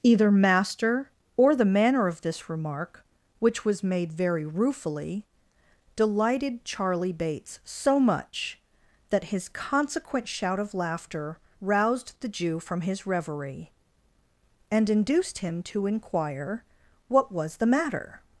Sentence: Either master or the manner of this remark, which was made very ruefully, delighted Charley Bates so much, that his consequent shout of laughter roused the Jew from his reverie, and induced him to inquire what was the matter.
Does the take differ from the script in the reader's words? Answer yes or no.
no